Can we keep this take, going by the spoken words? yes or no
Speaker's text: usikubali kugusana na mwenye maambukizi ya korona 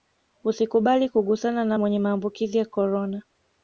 yes